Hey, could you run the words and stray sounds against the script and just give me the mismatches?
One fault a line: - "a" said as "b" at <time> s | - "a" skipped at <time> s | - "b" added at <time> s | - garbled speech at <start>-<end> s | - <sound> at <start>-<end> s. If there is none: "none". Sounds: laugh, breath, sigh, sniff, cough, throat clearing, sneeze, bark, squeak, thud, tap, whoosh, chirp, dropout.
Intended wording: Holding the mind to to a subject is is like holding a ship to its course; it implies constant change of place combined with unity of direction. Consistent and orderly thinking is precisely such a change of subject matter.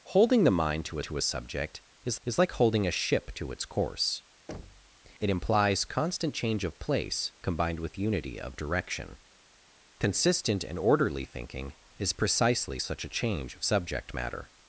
- thud at 4.5-5.0 s